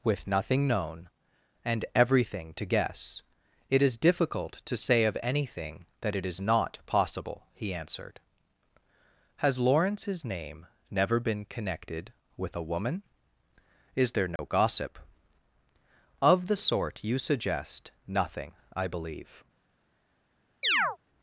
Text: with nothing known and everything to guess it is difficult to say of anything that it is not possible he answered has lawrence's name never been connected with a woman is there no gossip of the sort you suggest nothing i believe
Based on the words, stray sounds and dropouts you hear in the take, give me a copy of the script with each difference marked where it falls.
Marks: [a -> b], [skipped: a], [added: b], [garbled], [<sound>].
with nothing known and everything to guess it is difficult to say of anything that it is not possible he answered has lawrence's name never been connected with a woman is there no [dropout] gossip of the sort you suggest nothing i believe [chirp]